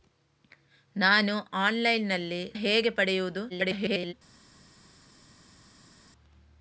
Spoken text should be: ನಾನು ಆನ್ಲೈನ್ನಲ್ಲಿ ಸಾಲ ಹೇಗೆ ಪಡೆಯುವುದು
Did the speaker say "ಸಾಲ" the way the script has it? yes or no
no